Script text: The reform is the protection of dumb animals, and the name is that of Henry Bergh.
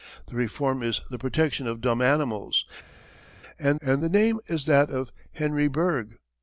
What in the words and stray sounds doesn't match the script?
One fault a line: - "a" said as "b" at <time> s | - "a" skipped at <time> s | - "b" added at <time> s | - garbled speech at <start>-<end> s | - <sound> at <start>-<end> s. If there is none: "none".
- "and" added at 3.8 s